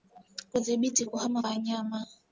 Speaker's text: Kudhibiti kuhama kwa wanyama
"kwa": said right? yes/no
no